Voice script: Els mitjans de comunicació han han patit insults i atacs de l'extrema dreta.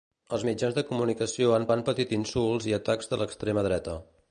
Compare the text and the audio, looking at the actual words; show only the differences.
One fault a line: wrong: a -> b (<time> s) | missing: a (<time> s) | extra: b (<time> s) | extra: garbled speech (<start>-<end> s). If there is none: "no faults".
no faults